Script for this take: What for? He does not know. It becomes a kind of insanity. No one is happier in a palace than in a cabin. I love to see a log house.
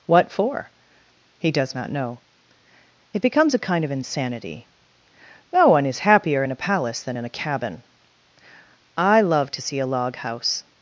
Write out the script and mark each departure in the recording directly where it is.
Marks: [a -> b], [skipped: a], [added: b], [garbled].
What for? He does not know. It becomes a kind of insanity. No one is happier in a palace than in a cabin. I love to see a log house.